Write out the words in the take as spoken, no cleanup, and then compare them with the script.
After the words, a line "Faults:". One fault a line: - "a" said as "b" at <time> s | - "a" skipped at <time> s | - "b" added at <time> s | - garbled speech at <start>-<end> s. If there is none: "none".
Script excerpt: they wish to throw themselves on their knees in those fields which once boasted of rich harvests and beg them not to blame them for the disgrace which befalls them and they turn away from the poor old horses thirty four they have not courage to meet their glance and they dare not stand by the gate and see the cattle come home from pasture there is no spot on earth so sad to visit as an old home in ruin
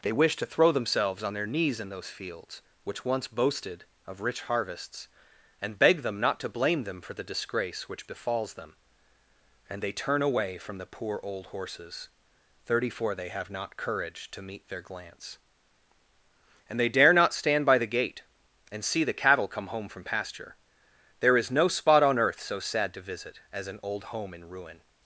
they wish to throw themselves on their knees in those fields which once boasted of rich harvests and beg them not to blame them for the disgrace which befalls them and they turn away from the poor old horses thirty four they have not courage to meet their glance and they dare not stand by the gate and see the cattle come home from pasture there is no spot on earth so sad to visit as an old home in ruin
Faults:
none